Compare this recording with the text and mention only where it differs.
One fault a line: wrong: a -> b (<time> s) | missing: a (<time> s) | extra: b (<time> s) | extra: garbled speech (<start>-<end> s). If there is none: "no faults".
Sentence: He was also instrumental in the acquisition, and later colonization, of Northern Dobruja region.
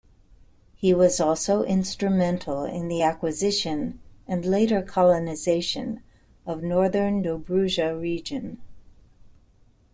no faults